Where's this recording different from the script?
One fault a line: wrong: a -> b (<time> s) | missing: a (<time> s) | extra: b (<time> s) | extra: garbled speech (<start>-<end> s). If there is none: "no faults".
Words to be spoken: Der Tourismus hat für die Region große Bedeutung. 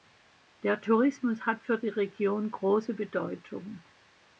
no faults